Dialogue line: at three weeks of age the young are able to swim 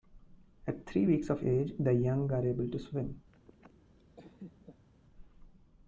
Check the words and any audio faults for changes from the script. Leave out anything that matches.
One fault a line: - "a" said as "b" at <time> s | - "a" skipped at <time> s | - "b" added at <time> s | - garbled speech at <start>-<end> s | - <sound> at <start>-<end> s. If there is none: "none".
- laugh at 3.3-4.9 s